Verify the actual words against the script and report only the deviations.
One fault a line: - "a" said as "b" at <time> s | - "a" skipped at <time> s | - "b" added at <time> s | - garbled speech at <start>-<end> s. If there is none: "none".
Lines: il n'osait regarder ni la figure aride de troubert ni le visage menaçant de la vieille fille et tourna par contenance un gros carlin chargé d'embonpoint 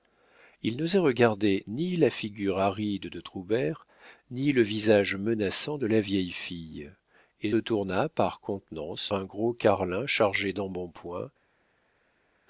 none